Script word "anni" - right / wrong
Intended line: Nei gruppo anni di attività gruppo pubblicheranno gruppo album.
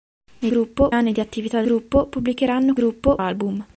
right